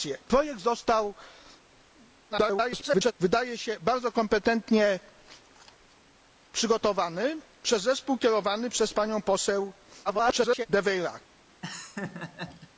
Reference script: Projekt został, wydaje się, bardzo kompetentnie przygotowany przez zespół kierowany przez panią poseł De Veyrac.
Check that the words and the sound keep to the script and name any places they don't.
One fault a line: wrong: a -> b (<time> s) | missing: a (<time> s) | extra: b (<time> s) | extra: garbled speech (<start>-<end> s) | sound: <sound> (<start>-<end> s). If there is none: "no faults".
extra: garbled speech (2.3-3.1 s)
extra: garbled speech (10.0-10.7 s)
sound: laugh (11.6-12.7 s)